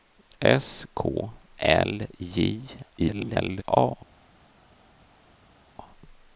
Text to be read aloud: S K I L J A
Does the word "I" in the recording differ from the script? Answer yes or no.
yes